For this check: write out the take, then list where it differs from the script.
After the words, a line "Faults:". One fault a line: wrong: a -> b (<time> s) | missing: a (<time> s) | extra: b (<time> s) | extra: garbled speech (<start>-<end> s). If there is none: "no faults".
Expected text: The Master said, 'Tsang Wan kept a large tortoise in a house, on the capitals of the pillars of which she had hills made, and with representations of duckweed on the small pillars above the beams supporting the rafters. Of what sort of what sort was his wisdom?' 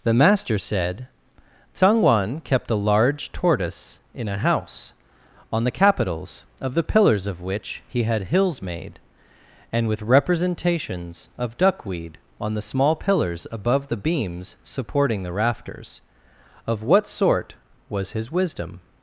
The Master said, 'Tsang Wan kept a large tortoise in a house, on the capitals of the pillars of which he had hills made, and with representations of duckweed on the small pillars above the beams supporting the rafters. Of what sort was his wisdom?'
Faults:
wrong: she -> he (7.8 s)
missing: of what sort (17.5 s)